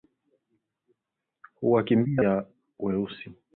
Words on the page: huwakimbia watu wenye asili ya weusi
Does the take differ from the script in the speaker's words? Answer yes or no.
yes